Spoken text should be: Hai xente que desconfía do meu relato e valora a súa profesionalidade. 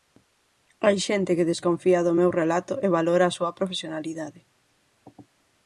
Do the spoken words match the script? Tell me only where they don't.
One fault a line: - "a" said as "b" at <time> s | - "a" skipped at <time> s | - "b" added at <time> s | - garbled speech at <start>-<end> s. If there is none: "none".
none